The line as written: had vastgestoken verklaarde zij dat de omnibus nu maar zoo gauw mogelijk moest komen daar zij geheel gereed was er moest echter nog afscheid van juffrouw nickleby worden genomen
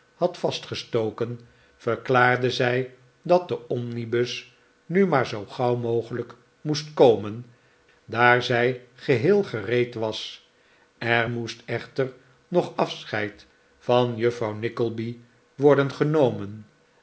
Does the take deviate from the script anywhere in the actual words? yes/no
no